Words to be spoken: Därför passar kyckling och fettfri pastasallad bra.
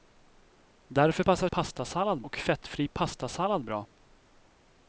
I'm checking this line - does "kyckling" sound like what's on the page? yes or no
no